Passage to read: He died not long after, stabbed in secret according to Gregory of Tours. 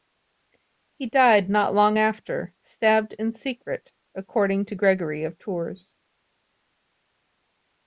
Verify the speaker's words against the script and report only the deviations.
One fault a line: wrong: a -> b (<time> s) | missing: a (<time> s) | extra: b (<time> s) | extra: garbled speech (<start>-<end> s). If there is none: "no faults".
no faults